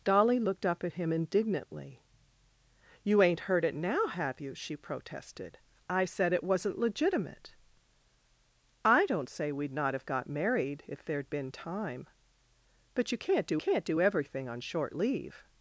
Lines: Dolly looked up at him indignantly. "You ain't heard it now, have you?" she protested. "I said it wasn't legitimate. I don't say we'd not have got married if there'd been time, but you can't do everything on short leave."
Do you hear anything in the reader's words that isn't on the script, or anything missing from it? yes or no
yes